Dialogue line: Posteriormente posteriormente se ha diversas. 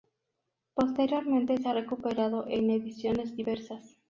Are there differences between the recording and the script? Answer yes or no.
yes